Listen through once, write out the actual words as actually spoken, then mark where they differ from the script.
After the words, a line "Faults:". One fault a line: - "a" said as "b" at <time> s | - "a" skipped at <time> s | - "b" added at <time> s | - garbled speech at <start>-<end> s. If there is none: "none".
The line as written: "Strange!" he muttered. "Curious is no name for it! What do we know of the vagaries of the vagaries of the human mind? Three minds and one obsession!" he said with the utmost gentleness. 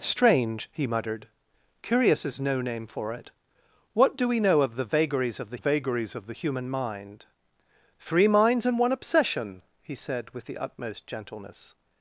"Strange!" he muttered. "Curious is no name for it! What do we know of the vagaries of the vagaries of the human mind? Three minds and one obsession!" he said with the utmost gentleness.
Faults:
none